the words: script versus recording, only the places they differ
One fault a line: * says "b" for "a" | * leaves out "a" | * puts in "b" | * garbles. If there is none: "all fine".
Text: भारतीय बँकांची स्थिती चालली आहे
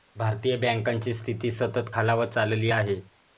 * puts in "सतत खालावत"